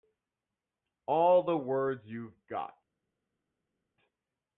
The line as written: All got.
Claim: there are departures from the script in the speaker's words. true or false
true